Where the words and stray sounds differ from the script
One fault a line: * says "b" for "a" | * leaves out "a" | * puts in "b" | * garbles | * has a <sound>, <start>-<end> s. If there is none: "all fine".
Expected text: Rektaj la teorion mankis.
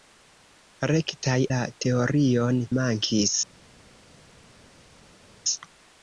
all fine